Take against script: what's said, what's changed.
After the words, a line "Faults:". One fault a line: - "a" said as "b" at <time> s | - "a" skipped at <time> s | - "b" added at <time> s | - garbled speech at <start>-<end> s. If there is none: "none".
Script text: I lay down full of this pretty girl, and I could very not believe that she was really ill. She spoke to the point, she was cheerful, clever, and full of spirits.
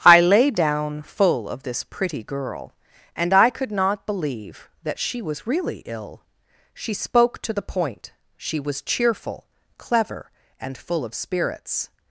I lay down full of this pretty girl, and I could not believe that she was really ill. She spoke to the point, she was cheerful, clever, and full of spirits.
Faults:
- "very" skipped at 3.7 s